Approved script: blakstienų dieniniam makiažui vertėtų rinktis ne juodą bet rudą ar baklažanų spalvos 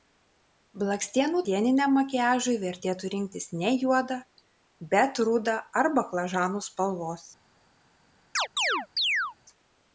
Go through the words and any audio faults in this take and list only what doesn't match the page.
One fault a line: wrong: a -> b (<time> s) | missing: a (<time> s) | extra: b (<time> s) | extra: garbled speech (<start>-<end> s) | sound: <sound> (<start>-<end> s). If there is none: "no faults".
sound: chirp (8.4-9.4 s)